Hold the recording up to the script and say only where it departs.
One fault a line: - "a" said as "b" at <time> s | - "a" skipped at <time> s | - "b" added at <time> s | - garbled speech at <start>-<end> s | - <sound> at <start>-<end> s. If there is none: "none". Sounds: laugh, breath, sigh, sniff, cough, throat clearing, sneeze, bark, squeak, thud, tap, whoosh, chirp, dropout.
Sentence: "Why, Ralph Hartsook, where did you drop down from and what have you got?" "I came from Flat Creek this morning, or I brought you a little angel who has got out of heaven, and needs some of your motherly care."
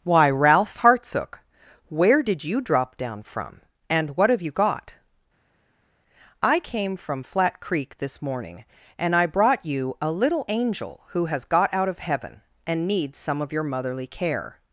- "or" said as "and" at 9.0 s